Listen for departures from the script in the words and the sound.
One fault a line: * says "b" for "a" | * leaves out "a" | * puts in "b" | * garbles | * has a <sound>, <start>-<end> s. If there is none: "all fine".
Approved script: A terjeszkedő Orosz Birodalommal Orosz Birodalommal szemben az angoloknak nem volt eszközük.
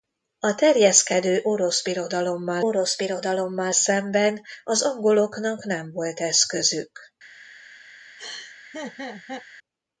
* has a laugh, 8.2-9.5 s